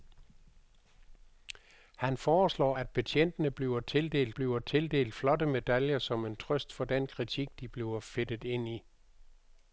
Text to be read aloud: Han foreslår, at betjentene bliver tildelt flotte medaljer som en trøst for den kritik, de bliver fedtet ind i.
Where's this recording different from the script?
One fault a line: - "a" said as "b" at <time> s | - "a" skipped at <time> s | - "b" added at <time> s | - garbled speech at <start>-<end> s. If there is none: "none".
- "bliver tildelt" added at 4.3 s